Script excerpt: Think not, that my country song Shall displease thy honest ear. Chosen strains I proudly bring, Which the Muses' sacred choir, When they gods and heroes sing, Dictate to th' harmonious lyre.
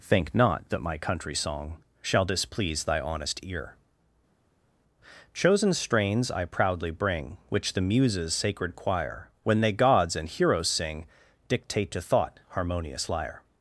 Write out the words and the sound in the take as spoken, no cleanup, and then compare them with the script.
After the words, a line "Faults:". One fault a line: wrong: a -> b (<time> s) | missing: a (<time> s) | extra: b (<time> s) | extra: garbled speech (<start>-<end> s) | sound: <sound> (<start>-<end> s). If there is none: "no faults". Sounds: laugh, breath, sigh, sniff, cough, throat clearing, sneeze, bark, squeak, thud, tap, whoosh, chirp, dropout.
Think not, that my country song Shall displease thy honest ear. Chosen strains I proudly bring, Which the Muses' sacred choir, When they gods and heroes sing, Dictate to thought' harmonious lyre.
Faults:
wrong: th -> thought (12.0 s)